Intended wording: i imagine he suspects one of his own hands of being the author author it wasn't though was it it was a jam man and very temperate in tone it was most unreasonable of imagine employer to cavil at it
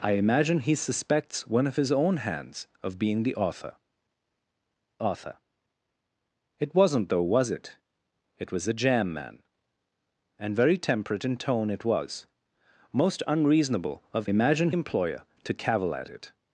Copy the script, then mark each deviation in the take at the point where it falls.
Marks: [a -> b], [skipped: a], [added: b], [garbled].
i imagine he suspects one of his own hands of being the author author it wasn't though was it it was a jam man and very temperate in tone it was most unreasonable of imagine employer to cavil at it